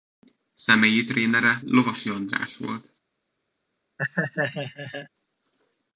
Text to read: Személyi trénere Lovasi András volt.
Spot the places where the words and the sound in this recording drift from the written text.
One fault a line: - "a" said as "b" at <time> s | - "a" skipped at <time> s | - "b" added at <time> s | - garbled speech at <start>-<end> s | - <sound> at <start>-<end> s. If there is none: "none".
- laugh at 4.0-5.1 s